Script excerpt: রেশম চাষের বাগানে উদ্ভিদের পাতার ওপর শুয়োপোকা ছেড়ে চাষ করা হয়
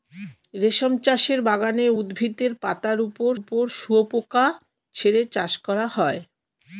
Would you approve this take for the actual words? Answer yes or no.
no